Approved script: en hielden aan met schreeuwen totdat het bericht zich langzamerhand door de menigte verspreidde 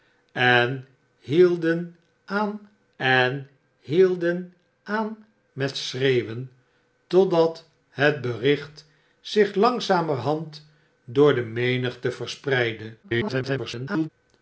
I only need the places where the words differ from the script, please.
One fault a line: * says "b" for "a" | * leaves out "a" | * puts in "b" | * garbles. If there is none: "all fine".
* puts in "en hielden aan"
* garbles